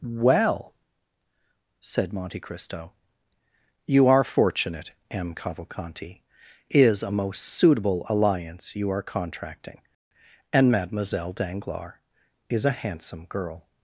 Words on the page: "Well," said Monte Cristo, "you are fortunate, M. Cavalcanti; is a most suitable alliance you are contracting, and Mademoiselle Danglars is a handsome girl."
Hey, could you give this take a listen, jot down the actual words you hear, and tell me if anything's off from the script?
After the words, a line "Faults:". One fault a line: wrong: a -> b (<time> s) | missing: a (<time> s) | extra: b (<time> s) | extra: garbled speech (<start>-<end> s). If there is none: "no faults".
"Well," said Monte Cristo, "you are fortunate, M. Cavalcanti; is a most suitable alliance you are contracting, and Mademoiselle Danglars is a handsome girl."
Faults:
no faults